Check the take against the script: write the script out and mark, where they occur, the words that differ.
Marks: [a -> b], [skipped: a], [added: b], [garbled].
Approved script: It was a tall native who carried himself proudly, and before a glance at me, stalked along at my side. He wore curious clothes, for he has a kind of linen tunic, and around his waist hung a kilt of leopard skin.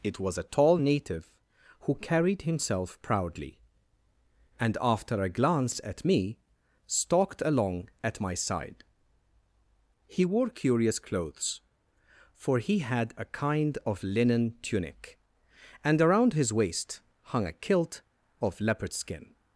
It was a tall native who carried himself proudly, and [before -> after] a glance at me, stalked along at my side. He wore curious clothes, for he [has -> had] a kind of linen tunic, and around his waist hung a kilt of leopard skin.